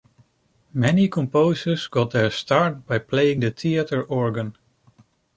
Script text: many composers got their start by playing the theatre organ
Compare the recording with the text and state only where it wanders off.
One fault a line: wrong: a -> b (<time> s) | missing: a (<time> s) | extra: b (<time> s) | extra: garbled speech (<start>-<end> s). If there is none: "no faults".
no faults